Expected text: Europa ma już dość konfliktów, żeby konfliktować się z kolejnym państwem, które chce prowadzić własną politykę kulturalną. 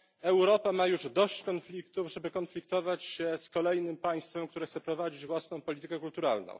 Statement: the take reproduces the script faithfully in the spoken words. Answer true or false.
true